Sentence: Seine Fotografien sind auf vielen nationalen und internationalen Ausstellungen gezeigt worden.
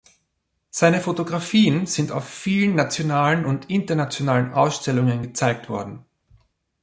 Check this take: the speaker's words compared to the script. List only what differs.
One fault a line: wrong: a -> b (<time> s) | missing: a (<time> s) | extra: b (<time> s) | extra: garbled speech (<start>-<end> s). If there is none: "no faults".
no faults